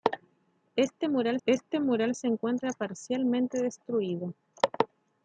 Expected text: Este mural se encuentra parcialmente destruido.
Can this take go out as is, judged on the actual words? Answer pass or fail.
fail